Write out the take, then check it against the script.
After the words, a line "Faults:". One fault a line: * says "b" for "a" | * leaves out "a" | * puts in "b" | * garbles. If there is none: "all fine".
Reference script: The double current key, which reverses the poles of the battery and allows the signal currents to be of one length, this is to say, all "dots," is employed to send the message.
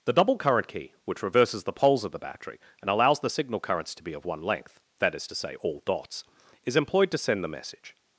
The double current key, which reverses the poles of the battery and allows the signal currents to be of one length, that is to say, all "dots," is employed to send the message.
Faults:
* says "that" for "this"